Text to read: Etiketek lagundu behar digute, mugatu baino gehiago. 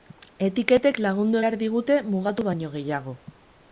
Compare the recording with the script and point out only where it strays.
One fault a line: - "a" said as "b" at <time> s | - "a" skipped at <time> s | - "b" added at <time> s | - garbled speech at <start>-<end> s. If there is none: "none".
none